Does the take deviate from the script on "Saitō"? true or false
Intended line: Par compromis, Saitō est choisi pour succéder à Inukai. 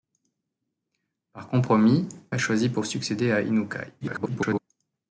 true